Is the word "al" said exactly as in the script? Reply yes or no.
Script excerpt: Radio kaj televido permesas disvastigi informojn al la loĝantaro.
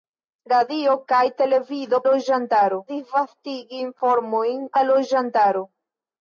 no